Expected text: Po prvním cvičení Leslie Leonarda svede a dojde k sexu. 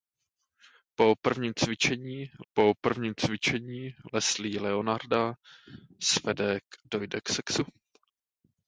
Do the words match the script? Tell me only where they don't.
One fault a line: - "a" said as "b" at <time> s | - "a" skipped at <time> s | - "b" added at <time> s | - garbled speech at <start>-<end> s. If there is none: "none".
- "po prvním cvičení" added at 2.5 s
- "a" skipped at 6.6 s